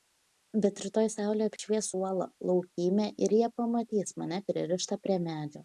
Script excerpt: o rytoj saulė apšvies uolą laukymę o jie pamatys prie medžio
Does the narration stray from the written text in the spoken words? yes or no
yes